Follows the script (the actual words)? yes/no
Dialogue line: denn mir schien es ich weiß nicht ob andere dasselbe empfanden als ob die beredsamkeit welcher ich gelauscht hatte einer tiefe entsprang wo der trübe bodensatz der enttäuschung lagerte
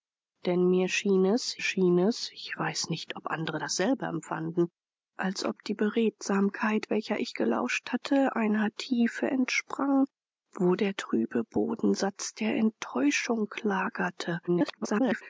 no